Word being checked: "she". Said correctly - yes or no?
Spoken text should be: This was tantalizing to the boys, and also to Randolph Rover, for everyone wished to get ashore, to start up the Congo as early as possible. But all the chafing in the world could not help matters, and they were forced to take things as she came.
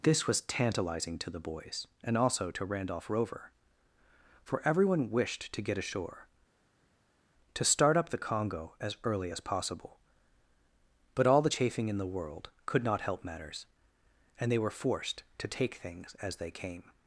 no